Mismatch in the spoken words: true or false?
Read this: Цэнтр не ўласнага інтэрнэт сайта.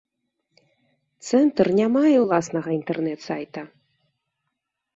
true